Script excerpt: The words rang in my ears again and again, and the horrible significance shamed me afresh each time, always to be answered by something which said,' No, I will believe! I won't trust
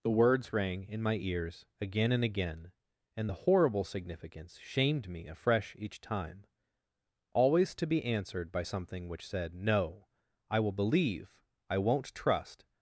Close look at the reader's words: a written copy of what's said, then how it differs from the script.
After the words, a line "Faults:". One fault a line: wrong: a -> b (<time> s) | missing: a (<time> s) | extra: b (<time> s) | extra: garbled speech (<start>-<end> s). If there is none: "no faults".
The words rang in my ears again and again, and the horrible significance shamed me afresh each time, always to be answered by something which said,' No, I will believe! I won't trust
Faults:
no faults